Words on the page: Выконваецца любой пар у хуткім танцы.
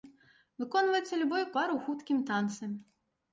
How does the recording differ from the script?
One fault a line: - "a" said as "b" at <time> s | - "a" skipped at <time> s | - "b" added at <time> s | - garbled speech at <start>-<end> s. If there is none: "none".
none